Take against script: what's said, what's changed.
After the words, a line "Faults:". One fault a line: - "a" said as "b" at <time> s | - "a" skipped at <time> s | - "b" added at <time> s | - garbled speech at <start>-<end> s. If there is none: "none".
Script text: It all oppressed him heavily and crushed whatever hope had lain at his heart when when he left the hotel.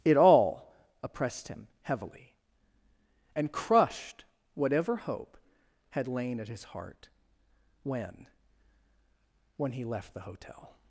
It all oppressed him heavily and crushed whatever hope had lain at his heart when when he left the hotel.
Faults:
none